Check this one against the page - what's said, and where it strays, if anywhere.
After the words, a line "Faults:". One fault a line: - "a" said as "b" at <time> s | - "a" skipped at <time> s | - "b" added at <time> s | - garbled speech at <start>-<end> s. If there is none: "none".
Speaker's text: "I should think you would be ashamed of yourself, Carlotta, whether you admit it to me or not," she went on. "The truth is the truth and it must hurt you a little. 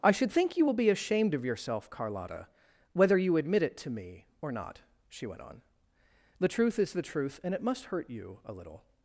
"I should think you will be ashamed of yourself, Carlotta, whether you admit it to me or not," she went on. "The truth is the truth and it must hurt you a little.
Faults:
- "would" said as "will" at 0.6 s